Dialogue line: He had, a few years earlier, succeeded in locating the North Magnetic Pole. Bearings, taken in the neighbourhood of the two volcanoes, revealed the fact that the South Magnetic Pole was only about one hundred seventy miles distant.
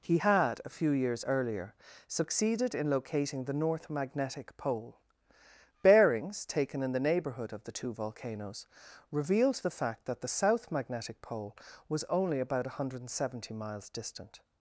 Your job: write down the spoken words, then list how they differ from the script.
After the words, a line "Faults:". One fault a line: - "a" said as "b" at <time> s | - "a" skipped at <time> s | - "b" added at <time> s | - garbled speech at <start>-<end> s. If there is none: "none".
He had, a few years earlier, succeeded in locating the North Magnetic Pole. Bearings, taken in the neighbourhood of the two volcanoes, revealed the fact that the South Magnetic Pole was only about one hundred seventy miles distant.
Faults:
none